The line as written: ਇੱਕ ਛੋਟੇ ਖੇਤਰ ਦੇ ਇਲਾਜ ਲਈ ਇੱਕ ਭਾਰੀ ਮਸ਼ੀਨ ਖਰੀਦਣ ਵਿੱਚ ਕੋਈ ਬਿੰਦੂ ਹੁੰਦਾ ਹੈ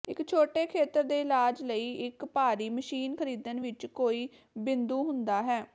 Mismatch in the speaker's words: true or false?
false